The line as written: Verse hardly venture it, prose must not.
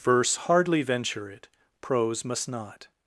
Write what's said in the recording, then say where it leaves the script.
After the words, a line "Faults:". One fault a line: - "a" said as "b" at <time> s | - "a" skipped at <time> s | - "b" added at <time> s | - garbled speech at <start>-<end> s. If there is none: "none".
Verse hardly venture it, prose must not.
Faults:
none